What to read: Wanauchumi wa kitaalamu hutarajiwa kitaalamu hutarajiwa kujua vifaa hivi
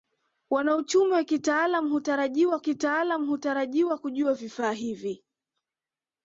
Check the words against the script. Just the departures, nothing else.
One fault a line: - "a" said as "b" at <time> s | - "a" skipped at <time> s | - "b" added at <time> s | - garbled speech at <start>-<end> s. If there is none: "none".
none